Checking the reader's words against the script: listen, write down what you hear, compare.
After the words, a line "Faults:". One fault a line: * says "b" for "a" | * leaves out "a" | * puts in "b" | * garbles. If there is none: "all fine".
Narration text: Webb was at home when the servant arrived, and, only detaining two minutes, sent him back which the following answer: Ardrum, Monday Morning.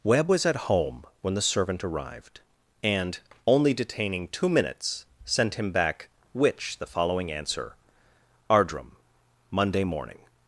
Webb was at home when the servant arrived, and, only detaining two minutes, sent him back which the following answer: Ardrum, Monday Morning.
Faults:
all fine